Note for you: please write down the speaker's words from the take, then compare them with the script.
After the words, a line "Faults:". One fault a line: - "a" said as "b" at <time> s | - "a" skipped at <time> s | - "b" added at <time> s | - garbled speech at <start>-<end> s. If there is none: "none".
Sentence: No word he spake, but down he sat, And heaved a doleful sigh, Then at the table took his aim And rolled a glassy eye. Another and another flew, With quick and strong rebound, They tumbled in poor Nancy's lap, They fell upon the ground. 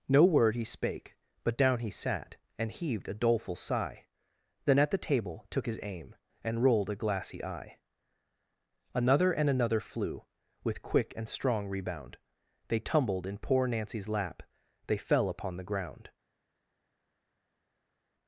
No word he spake, but down he sat, And heaved a doleful sigh, Then at the table took his aim And rolled a glassy eye. Another and another flew, With quick and strong rebound, They tumbled in poor Nancy's lap, They fell upon the ground.
Faults:
none